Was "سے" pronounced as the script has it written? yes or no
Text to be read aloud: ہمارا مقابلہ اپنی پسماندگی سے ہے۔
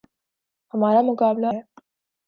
no